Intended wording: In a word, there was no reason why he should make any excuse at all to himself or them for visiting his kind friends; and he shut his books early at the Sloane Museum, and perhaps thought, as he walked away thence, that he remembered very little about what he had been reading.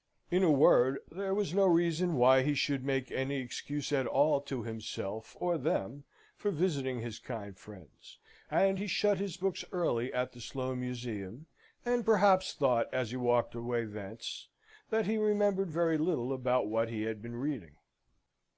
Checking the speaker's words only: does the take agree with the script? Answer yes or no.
yes